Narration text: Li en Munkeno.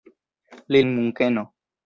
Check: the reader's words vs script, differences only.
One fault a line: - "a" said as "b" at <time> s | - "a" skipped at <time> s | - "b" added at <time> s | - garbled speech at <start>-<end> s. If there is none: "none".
none